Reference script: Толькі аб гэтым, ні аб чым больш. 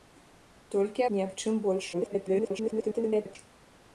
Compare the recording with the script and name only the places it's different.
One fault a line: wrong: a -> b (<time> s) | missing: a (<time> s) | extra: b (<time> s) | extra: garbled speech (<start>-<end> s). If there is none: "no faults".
missing: аб гэтым (1.1 s)
extra: garbled speech (1.9-3.4 s)